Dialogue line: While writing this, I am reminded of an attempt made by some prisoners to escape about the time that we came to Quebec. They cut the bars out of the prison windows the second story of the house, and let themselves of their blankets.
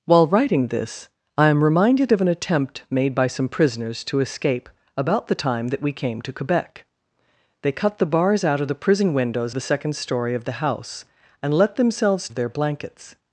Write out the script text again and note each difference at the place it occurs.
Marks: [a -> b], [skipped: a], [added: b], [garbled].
While writing this, I am reminded of an attempt made by some prisoners to escape about the time that we came to Quebec. They cut the bars out of the prison windows the second story of the house, and let themselves of their blankets.